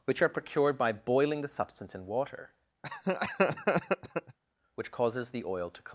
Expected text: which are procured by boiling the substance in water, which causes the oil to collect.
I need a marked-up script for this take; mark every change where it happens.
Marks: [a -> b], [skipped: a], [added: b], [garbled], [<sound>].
which are procured by boiling the substance in water, [laugh] which causes the oil to collect.